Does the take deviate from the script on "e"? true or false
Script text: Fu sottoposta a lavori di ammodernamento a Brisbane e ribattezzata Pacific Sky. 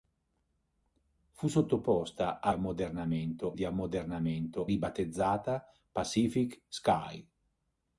true